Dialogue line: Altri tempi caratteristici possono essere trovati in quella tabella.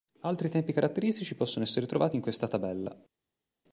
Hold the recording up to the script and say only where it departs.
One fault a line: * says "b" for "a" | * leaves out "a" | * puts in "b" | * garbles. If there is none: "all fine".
* says "questa" for "quella"